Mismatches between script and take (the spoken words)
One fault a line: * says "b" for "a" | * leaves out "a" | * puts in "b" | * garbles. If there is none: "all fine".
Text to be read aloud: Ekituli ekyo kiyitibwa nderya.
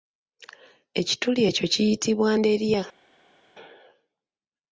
all fine